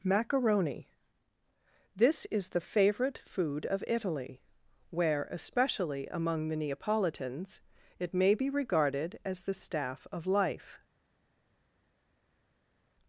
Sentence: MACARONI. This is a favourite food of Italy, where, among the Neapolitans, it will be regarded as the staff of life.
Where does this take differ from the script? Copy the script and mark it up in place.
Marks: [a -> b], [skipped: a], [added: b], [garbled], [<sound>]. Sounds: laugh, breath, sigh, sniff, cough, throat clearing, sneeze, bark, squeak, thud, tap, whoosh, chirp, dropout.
MACARONI. This is [a -> the] favourite food of Italy, where, [added: especially] among the Neapolitans, it [will -> may] be regarded as the staff of life.